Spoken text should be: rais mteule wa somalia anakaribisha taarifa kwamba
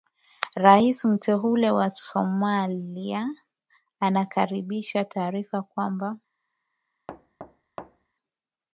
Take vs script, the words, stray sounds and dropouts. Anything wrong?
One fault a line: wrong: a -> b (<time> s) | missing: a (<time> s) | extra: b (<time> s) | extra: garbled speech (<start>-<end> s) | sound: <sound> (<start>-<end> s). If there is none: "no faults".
sound: thud (7.1-8.1 s)